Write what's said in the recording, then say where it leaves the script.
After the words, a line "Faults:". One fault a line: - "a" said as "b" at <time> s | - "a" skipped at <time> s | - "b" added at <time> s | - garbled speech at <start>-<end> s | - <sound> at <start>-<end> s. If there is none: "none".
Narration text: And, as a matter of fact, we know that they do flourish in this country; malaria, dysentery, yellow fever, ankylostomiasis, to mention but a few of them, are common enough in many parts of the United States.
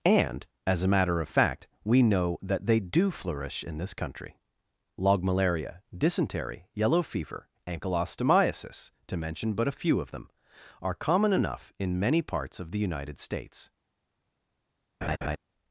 And, as a matter of fact, we know that they do flourish in this country; log malaria, dysentery, yellow fever, ankylostomiasis, to mention but a few of them, are common enough in many parts of the United States.
Faults:
- "log" added at 5.0 s
- laugh at 15.0-15.4 s